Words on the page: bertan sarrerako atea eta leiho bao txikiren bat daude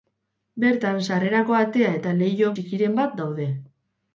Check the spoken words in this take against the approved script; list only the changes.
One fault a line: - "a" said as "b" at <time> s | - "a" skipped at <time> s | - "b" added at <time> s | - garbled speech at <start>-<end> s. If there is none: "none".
- "bao" skipped at 2.5 s